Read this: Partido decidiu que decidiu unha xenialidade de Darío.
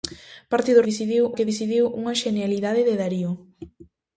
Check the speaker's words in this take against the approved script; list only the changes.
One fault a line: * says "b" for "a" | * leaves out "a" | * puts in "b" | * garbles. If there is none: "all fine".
all fine